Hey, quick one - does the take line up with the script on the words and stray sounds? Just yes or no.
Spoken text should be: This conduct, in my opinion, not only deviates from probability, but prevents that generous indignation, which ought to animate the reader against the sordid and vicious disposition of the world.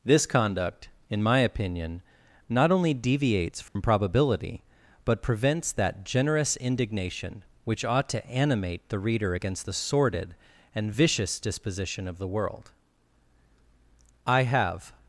no